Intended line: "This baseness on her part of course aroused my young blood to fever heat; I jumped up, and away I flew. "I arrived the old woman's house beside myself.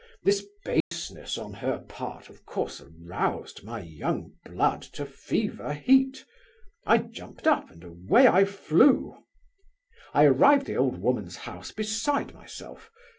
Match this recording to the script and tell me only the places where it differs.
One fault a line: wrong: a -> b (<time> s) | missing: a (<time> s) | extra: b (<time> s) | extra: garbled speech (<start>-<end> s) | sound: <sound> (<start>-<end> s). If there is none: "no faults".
sound: dropout (0.8-0.9 s)